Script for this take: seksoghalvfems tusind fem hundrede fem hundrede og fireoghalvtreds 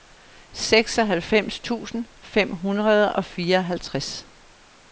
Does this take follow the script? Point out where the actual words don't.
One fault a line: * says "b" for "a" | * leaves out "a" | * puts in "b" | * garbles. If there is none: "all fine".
* leaves out "fem hundrede"